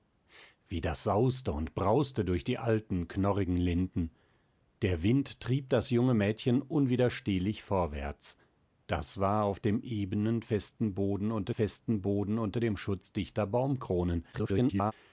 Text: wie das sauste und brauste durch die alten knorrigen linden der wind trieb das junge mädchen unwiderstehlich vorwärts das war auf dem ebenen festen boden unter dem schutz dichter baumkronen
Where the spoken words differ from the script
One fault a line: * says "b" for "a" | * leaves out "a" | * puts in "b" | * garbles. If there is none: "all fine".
* puts in "festen boden unter"
* garbles